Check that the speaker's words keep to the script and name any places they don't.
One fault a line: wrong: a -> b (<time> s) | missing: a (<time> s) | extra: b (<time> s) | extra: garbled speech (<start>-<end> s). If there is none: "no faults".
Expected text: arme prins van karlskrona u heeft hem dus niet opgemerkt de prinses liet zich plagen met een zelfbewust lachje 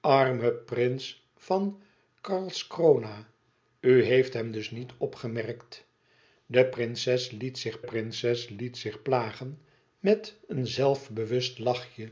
extra: prinses liet zich (7.8 s)